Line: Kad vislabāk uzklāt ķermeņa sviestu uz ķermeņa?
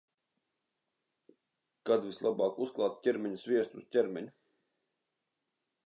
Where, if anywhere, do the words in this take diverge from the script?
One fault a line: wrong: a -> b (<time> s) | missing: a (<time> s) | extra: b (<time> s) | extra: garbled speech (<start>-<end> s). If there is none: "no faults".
no faults